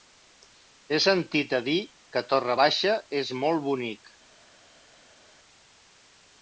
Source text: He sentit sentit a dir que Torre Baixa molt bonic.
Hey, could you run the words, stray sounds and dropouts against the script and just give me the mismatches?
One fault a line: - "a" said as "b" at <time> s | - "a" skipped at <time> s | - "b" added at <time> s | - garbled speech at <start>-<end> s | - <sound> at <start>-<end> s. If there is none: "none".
- "sentit" skipped at 1.5 s
- "és" added at 3.2 s